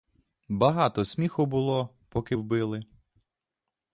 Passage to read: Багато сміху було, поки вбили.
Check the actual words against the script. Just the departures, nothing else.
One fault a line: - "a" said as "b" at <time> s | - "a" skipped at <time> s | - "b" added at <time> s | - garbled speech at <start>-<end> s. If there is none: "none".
none